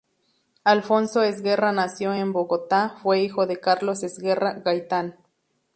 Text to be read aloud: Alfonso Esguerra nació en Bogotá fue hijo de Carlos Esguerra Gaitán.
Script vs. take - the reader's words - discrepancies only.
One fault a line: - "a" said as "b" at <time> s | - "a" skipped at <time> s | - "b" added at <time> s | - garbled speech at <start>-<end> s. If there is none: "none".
none